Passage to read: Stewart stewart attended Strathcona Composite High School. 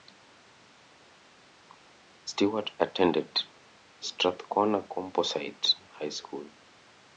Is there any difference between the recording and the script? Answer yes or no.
yes